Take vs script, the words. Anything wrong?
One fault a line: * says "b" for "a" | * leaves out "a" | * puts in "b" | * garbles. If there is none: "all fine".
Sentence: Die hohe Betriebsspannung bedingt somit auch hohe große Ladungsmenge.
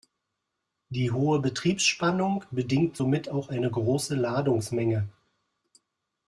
* says "eine" for "hohe"